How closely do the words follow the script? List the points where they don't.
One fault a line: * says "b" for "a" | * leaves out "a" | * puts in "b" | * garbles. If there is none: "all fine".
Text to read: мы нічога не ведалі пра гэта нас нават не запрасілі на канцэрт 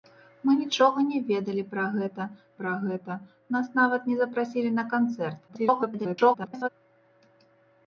* puts in "пра гэта"
* garbles